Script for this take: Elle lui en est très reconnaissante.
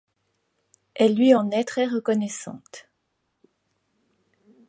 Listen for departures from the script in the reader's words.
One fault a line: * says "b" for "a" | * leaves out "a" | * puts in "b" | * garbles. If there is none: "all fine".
all fine